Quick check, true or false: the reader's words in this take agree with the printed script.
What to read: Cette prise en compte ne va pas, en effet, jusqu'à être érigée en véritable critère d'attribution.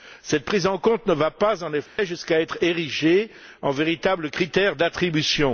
true